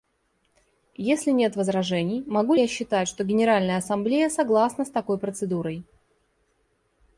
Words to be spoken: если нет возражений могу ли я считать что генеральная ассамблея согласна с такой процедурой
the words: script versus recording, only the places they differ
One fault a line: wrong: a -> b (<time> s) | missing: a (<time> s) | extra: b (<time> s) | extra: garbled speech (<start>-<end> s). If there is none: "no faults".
missing: ли (2.5 s)